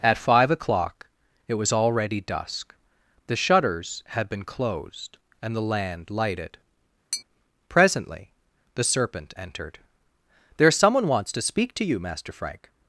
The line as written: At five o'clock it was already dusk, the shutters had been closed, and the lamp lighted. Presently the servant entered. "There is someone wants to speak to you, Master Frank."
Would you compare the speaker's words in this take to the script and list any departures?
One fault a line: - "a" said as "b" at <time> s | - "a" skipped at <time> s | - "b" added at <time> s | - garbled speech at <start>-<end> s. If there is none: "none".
- "lamp" said as "land" at 5.6 s
- "servant" said as "serpent" at 8.8 s